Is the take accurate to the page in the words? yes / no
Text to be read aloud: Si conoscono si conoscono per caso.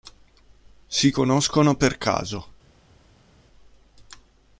no